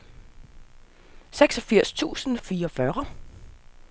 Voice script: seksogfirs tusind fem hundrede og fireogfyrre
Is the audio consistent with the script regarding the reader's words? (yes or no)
no